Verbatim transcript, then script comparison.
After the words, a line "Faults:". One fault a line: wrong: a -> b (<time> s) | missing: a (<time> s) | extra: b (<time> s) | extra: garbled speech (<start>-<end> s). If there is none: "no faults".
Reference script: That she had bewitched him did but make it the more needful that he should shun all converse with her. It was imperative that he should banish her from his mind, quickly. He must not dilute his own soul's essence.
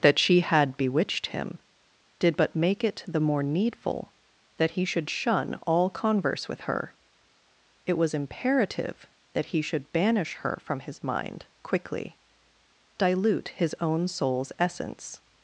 That she had bewitched him did but make it the more needful that he should shun all converse with her. It was imperative that he should banish her from his mind, quickly. Dilute his own soul's essence.
Faults:
missing: He must not (12.2 s)